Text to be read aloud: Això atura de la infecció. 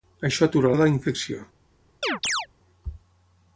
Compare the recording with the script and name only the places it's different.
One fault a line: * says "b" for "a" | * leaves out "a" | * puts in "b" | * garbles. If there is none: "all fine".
all fine